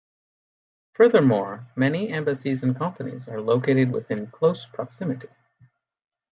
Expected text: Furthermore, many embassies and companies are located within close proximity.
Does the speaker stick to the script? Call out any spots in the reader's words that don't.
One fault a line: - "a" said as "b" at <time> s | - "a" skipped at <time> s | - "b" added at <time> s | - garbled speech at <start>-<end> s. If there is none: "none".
none